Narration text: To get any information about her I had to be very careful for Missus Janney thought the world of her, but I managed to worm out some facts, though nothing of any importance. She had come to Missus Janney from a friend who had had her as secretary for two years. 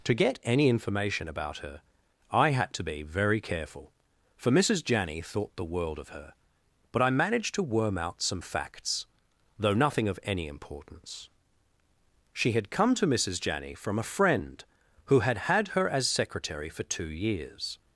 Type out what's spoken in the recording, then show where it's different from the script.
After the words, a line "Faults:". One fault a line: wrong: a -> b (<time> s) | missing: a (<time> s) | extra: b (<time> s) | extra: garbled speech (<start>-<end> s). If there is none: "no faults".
To get any information about her I had to be very careful for Missus Janney thought the world of her, but I managed to worm out some facts, though nothing of any importance. She had come to Missus Janney from a friend who had had her as secretary for two years.
Faults:
no faults